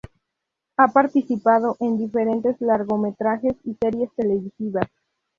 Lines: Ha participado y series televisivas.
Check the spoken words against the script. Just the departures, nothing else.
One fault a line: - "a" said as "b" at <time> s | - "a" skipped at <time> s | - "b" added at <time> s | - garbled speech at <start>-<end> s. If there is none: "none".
- "en diferentes largometrajes" added at 1.8 s